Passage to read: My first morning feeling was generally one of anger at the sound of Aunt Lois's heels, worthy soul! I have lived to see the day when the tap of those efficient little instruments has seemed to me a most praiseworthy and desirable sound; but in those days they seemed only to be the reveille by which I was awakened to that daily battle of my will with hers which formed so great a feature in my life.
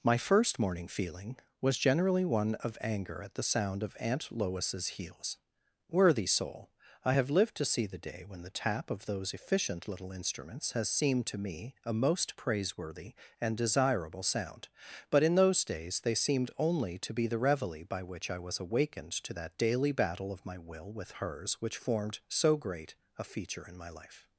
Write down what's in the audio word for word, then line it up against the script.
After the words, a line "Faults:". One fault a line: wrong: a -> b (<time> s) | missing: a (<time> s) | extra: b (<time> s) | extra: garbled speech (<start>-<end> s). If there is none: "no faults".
My first morning feeling was generally one of anger at the sound of Aunt Lois's heels, worthy soul! I have lived to see the day when the tap of those efficient little instruments has seemed to me a most praiseworthy and desirable sound; but in those days they seemed only to be the reveille by which I was awakened to that daily battle of my will with hers which formed so great a feature in my life.
Faults:
no faults